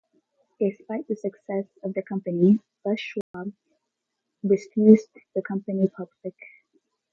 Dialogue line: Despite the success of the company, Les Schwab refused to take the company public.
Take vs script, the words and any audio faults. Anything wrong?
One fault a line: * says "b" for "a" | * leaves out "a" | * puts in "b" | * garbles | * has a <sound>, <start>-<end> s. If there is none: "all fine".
* has a dropout, 3.2-3.3 s
* leaves out "take"